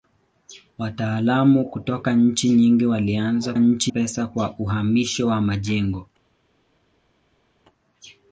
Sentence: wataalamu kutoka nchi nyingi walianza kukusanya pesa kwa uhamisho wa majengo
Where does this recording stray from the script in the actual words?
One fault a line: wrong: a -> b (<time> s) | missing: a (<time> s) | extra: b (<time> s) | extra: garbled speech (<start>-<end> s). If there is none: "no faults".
wrong: kukusanya -> nchi (3.6 s)